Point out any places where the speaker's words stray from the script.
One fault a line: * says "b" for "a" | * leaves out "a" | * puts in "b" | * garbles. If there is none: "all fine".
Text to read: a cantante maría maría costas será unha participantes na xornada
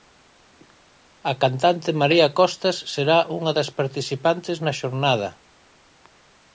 * leaves out "maría"
* puts in "das"